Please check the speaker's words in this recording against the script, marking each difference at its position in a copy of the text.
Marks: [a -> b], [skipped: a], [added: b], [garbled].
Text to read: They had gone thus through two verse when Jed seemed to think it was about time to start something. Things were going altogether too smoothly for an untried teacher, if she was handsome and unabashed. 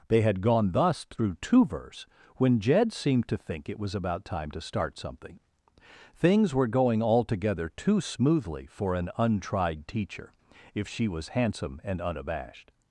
They had gone thus through two verse when Jed seemed to think it was about time to start something. Things were going altogether too smoothly for an untried teacher, if she was handsome and unabashed.